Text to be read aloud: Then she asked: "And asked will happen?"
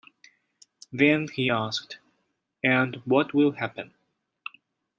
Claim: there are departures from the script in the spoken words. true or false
true